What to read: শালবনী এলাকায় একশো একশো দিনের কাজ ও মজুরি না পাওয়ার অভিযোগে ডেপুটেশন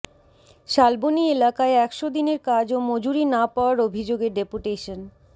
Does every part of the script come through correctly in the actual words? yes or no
no